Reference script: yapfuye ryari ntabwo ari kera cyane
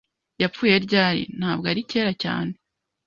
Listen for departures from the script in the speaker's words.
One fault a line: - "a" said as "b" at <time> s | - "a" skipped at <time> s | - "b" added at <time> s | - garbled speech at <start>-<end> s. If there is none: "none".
none